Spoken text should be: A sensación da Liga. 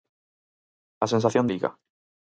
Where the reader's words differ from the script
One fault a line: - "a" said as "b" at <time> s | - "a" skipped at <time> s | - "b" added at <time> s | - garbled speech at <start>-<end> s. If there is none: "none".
- "da" skipped at 1.4 s